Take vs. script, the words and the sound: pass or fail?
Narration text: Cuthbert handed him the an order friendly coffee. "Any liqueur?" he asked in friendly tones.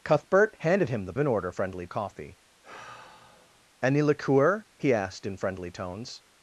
fail